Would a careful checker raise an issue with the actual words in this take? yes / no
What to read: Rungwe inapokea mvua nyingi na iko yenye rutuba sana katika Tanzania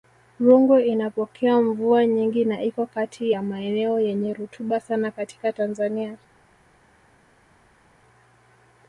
yes